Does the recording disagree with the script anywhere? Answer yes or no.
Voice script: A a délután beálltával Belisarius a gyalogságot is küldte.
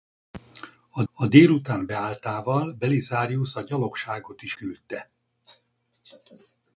no